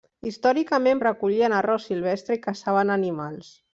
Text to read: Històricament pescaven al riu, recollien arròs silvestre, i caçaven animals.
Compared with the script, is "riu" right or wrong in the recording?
wrong